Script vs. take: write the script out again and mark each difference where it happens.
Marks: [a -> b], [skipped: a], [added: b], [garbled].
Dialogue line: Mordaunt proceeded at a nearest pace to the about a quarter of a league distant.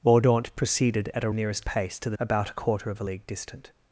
Mordaunt proceeded at a nearest pace to the about a quarter of a league distant.